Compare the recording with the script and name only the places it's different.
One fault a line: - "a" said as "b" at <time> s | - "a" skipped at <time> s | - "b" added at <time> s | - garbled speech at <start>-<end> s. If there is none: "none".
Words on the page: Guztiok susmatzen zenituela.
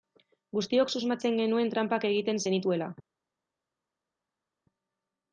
- "genuen tranpak egiten" added at 1.4 s